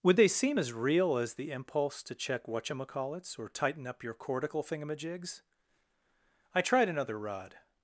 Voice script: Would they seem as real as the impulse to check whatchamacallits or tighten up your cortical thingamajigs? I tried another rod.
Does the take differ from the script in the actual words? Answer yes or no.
no